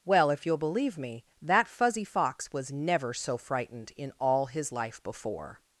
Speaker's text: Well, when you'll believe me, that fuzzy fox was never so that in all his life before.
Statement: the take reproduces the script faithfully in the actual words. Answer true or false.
false